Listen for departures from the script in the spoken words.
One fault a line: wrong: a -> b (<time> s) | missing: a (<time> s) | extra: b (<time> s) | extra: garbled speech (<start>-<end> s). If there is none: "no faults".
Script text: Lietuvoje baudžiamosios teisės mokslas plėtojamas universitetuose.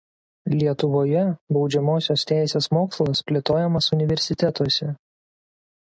no faults